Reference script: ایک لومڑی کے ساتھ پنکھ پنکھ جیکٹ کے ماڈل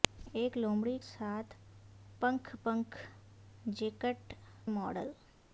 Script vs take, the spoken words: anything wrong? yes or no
yes